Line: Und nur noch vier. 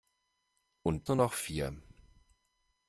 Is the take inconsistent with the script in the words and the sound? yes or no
no